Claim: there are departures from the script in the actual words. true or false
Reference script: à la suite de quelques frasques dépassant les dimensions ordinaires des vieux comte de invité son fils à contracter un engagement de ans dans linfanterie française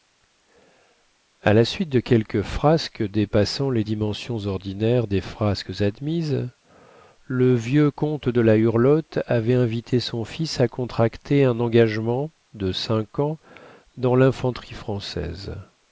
true